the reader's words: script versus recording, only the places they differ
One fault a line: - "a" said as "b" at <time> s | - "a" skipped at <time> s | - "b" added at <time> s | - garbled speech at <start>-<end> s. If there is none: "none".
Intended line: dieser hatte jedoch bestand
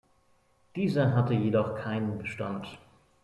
- "keinen" added at 1.8 s